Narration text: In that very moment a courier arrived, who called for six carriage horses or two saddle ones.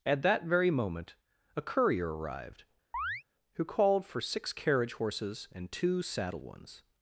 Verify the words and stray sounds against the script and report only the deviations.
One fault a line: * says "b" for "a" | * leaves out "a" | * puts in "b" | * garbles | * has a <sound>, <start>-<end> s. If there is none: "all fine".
* says "At" for "In"
* has a chirp, 2.9-3.2 s
* says "and" for "or"